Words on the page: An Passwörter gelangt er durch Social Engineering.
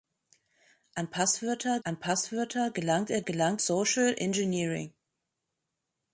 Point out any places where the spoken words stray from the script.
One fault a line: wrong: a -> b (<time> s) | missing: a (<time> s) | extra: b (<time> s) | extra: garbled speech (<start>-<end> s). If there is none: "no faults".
extra: an Passwörter (1.8 s)
wrong: durch -> gelangt (3.2 s)